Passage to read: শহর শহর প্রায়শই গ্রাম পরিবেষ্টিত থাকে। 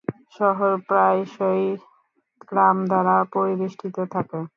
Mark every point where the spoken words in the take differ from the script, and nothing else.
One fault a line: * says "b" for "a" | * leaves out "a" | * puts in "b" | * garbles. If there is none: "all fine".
* leaves out "শহর"
* puts in "দ্বারা"